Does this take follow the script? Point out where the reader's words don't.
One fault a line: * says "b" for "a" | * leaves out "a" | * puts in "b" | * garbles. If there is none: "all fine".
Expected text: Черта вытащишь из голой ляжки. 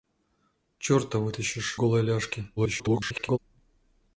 * leaves out "из"
* garbles